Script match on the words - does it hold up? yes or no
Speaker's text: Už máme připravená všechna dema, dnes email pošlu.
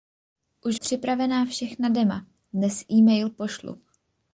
no